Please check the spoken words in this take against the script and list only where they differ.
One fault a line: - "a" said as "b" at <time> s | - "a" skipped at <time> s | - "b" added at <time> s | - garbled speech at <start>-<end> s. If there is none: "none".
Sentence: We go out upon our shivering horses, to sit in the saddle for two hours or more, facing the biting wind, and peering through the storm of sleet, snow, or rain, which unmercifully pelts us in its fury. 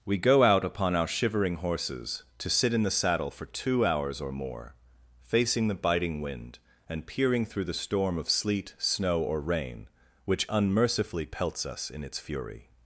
none